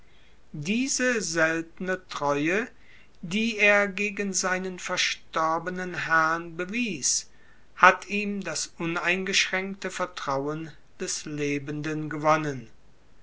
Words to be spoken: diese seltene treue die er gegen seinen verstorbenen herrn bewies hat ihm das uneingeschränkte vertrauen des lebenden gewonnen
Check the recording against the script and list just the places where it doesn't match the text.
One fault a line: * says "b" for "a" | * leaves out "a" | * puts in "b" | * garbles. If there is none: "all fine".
all fine